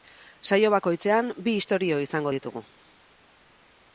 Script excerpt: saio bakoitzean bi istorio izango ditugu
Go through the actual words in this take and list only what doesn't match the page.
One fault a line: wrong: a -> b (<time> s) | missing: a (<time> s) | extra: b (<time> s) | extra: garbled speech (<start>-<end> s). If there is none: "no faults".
no faults